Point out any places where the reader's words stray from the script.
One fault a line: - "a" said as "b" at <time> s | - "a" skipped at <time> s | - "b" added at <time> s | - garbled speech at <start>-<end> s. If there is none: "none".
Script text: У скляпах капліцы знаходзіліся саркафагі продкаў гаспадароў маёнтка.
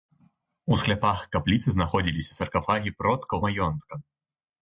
- "гаспадароў" skipped at 3.4 s